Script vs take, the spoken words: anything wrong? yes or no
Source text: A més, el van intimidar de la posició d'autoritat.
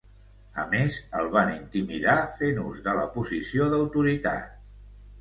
yes